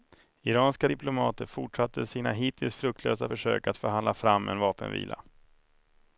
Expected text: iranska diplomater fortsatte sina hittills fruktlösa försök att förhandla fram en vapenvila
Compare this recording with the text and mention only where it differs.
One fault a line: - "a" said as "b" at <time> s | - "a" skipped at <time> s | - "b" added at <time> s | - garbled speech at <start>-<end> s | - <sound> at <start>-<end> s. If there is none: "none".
none